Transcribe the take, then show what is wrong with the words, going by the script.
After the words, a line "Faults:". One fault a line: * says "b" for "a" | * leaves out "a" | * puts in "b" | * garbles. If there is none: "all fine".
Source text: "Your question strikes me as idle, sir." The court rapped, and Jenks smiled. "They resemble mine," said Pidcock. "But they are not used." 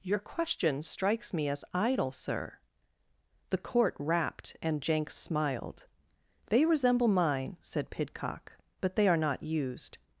"Your question strikes me as idle, sir." The court rapped, and Jenks smiled. "They resemble mine," said Pidcock. "But they are not used."
Faults:
all fine